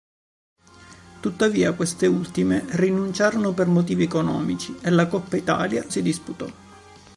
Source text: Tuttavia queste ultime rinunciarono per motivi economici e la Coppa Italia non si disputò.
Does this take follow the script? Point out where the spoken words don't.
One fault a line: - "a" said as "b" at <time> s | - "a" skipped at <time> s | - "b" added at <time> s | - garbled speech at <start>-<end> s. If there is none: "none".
- "non" skipped at 5.8 s